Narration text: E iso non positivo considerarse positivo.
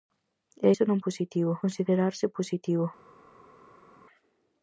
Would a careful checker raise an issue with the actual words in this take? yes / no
no